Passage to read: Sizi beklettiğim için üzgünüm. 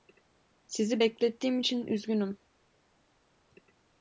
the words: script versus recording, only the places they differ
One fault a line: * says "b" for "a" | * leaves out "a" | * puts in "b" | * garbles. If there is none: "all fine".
all fine